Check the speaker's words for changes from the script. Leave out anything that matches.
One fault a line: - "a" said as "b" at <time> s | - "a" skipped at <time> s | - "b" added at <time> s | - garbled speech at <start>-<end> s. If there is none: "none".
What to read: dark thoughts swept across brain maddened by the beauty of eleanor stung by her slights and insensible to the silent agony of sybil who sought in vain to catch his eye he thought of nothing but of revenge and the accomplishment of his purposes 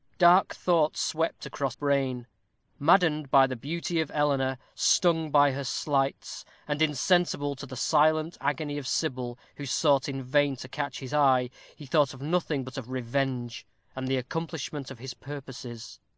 none